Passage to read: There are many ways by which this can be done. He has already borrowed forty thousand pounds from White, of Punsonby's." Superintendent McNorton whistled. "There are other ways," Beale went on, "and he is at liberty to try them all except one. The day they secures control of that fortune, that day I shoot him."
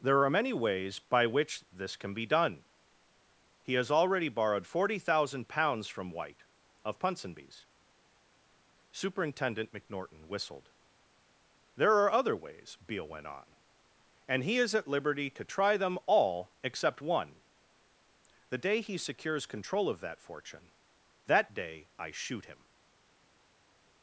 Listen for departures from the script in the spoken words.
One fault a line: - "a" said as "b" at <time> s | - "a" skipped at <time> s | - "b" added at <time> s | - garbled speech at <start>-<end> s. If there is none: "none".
- "they" said as "he" at 18.8 s